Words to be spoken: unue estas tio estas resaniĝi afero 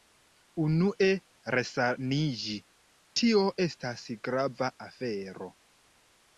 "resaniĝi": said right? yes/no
no